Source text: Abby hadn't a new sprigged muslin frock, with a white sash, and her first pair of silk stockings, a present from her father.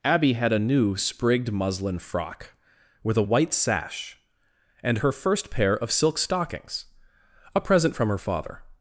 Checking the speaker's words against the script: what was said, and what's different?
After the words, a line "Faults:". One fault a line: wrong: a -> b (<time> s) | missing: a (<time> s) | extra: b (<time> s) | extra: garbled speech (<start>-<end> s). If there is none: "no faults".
Abby had a new sprigged muslin frock, with a white sash, and her first pair of silk stockings, a present from her father.
Faults:
wrong: hadn't -> had (0.3 s)